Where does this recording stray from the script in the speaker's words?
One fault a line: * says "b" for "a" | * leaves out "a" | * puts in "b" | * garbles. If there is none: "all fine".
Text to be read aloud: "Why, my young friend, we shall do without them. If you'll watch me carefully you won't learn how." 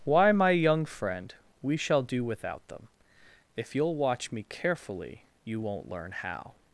all fine